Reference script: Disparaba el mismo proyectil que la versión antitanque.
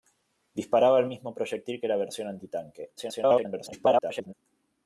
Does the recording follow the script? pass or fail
fail